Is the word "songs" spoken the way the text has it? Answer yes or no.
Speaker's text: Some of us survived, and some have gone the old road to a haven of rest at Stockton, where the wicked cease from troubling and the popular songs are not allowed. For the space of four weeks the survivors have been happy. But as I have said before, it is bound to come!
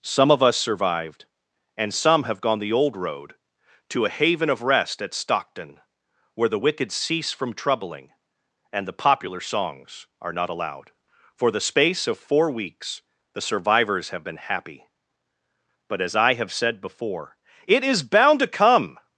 yes